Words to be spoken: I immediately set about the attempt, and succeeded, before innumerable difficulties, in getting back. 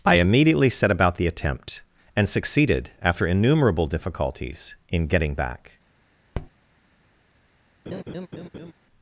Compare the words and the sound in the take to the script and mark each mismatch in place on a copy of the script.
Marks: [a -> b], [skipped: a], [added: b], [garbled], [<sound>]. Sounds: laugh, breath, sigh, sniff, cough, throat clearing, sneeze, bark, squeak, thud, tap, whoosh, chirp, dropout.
I immediately set about the attempt, and succeeded, [before -> after] innumerable difficulties, in getting back. [tap] [laugh]